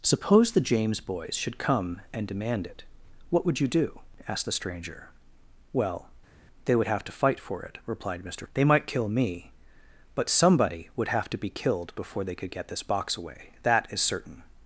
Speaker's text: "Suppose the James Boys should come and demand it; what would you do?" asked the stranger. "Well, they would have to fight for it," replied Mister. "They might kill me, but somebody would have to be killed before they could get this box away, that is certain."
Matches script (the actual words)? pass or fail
pass